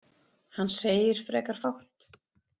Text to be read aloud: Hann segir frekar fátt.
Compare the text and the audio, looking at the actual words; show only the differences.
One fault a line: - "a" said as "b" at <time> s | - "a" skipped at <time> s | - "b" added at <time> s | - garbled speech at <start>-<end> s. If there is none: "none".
none